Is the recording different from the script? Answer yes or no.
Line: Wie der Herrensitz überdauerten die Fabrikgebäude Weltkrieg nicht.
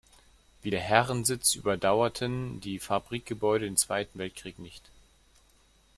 yes